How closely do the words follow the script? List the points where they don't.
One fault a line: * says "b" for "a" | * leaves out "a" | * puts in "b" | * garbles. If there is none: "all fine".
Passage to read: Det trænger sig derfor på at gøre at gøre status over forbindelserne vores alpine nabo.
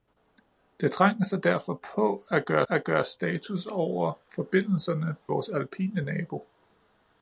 all fine